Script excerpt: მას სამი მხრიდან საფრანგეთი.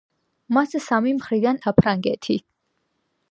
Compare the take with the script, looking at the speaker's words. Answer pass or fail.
pass